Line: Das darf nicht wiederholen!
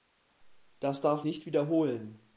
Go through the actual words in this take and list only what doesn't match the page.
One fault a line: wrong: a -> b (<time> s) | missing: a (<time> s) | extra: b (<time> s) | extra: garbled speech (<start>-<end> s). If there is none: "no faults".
no faults